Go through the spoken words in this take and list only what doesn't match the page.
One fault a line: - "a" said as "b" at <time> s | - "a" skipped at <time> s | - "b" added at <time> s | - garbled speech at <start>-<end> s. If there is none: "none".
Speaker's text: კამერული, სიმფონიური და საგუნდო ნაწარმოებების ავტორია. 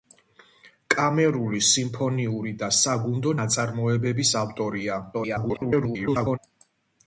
- garbled speech at 5.1-6.4 s